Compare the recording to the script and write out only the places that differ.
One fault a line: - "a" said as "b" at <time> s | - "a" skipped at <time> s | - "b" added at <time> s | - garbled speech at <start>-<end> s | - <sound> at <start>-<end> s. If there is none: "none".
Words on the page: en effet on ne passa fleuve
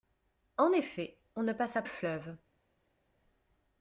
none